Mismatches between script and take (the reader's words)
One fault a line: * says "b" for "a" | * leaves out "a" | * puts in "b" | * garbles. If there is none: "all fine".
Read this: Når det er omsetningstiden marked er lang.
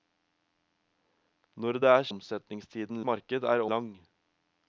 all fine